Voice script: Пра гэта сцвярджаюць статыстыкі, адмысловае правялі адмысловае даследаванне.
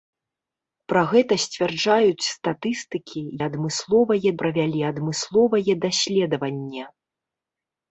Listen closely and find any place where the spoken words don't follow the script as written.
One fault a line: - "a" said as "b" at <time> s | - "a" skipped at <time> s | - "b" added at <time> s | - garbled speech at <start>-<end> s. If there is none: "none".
none